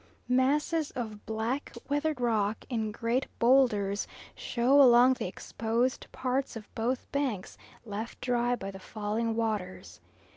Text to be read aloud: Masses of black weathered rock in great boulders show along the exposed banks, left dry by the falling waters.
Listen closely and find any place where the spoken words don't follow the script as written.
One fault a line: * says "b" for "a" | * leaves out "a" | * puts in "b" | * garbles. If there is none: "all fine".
* puts in "parts of both"